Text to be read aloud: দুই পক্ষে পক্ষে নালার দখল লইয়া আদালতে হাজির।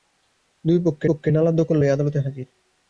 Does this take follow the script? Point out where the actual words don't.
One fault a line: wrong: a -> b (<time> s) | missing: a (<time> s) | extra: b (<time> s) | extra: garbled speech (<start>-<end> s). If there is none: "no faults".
no faults